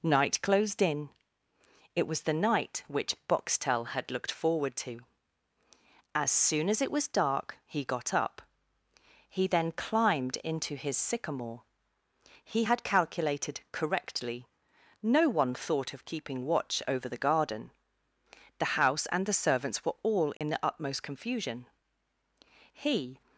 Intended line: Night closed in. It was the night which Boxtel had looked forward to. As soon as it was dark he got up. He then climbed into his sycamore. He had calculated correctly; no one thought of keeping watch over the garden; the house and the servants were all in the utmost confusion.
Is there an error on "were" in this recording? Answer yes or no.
no